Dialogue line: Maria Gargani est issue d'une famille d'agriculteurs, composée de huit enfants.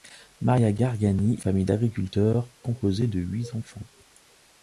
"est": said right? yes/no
no